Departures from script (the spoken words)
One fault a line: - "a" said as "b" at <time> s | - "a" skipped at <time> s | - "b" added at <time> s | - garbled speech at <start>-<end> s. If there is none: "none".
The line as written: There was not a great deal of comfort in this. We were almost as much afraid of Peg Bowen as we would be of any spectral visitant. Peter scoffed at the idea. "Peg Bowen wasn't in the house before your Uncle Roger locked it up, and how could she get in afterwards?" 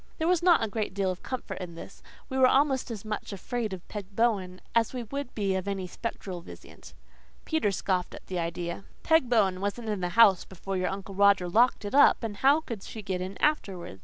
none